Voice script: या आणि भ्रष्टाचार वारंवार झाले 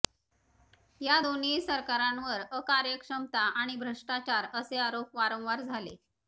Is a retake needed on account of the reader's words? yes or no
yes